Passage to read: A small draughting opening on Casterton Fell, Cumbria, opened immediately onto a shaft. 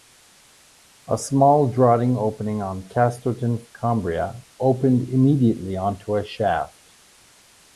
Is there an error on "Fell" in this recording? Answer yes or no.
yes